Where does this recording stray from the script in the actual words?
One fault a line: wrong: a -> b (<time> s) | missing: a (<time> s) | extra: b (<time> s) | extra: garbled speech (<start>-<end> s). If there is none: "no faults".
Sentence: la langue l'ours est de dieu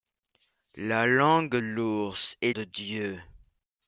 no faults